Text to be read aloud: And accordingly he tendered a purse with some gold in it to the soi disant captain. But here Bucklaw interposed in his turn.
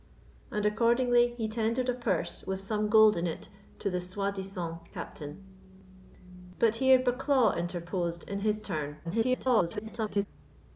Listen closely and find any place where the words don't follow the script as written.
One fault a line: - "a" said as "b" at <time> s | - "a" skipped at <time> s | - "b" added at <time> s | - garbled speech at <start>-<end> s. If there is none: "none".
- garbled speech at 9.0-10.3 s